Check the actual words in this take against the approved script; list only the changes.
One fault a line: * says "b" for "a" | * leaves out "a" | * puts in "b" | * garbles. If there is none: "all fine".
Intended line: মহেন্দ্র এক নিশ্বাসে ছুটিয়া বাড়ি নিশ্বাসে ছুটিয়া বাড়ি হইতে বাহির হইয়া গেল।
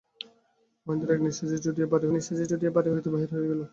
all fine